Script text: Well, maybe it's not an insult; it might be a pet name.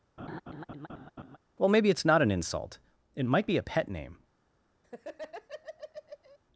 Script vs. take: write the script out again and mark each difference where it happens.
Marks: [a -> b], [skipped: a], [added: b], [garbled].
Well, maybe it's not an insult; it might be a pet name.